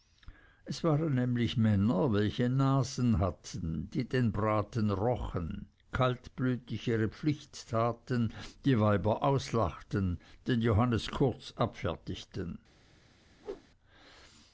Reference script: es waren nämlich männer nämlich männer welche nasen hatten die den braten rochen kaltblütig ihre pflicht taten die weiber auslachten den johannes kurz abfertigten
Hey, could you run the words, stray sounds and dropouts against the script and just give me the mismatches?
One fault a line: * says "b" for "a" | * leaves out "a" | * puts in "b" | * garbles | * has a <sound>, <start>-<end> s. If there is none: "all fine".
* leaves out "nämlich männer"
* has a whoosh, 13.4-13.7 s